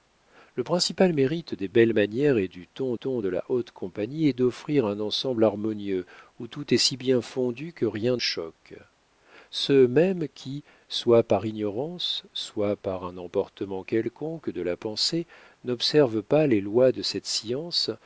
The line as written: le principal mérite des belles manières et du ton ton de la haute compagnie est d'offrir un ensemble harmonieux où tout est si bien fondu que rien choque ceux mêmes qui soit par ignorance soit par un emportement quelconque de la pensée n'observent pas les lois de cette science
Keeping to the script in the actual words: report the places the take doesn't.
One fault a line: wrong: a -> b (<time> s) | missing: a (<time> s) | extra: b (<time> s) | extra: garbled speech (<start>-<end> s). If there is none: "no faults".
no faults